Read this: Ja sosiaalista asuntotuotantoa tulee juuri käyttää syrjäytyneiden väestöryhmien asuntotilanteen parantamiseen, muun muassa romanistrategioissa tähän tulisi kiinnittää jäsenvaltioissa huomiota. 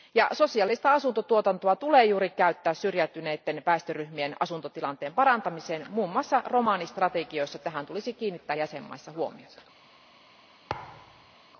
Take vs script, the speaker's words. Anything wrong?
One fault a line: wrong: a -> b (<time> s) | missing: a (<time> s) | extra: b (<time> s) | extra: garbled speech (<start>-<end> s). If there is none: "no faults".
no faults